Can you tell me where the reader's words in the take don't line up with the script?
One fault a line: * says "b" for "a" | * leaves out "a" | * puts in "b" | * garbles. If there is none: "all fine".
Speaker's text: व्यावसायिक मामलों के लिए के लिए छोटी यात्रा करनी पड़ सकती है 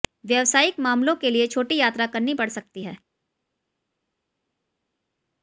* leaves out "के लिए"